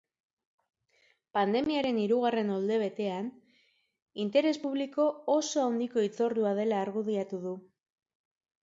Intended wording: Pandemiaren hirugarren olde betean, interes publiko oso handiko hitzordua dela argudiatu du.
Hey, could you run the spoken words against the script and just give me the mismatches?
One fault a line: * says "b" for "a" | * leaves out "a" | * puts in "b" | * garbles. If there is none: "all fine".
all fine